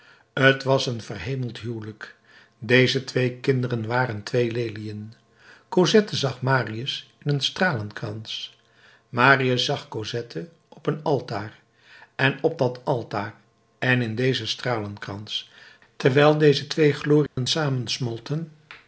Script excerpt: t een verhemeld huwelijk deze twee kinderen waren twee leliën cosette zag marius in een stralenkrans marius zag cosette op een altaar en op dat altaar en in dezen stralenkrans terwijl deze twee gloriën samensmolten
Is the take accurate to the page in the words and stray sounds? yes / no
no